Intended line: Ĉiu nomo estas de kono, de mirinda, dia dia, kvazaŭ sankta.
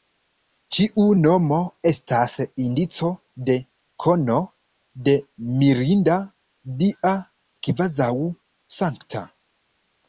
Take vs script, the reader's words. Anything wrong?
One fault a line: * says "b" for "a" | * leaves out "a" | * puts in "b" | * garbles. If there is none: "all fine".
* puts in "indico"
* leaves out "dia"